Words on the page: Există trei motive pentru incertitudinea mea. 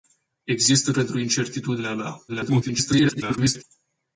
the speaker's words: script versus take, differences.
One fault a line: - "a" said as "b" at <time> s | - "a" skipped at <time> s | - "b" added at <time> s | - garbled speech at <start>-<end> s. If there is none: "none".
- "trei motive" skipped at 0.9 s
- garbled speech at 2.3-3.6 s